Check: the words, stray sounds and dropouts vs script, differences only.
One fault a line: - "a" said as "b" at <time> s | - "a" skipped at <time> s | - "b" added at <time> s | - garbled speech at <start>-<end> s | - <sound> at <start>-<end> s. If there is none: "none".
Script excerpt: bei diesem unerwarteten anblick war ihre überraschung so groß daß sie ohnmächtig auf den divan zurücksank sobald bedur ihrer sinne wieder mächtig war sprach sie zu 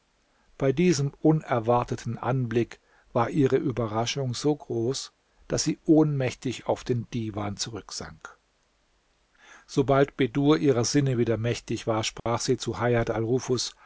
- dropout at 12.2-12.3 s